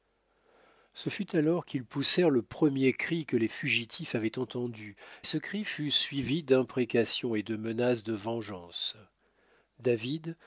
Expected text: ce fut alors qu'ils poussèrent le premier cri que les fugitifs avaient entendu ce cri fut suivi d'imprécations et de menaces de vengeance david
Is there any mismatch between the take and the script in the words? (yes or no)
no